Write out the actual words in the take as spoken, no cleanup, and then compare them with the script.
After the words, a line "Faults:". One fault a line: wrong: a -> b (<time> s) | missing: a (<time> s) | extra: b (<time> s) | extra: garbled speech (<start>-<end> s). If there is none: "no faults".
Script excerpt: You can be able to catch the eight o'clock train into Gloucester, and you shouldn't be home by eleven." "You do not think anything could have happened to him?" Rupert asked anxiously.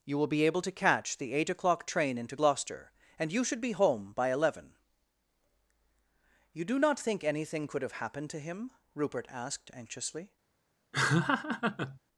You will be able to catch the eight o'clock train into Gloucester, and you should be home by eleven." "You do not think anything could have happened to him?" Rupert asked anxiously.
Faults:
wrong: can -> will (0.2 s)
wrong: shouldn't -> should (3.4 s)